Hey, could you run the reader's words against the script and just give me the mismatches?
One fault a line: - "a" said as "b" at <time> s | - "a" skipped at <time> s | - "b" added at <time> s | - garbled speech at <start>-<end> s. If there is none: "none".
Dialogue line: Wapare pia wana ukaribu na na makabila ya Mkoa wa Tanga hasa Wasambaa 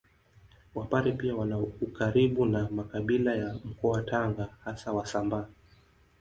- "na" skipped at 2.7 s